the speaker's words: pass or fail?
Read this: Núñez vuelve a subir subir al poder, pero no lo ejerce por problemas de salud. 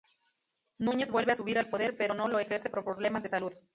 fail